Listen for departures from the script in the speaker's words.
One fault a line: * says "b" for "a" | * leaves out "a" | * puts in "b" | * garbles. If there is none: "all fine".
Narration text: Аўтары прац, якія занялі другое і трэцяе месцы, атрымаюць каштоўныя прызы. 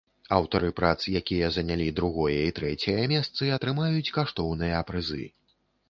all fine